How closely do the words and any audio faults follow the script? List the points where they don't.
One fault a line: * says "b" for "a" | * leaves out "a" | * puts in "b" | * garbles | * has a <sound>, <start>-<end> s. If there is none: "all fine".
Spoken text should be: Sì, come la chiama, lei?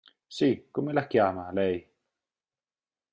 all fine